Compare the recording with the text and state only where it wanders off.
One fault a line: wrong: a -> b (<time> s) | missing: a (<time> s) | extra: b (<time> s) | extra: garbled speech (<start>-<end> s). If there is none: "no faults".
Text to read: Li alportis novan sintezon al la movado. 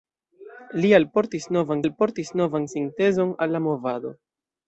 extra: alportis novan (1.8 s)